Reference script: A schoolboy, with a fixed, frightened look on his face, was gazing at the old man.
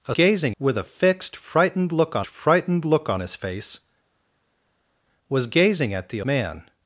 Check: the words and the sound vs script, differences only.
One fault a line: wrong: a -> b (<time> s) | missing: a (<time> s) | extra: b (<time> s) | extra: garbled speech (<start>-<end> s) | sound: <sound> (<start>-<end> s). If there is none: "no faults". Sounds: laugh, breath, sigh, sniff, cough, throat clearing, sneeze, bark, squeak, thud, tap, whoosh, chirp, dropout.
wrong: schoolboy -> gazing (0.1 s)
extra: frightened look on (2.2 s)
missing: old (6.2 s)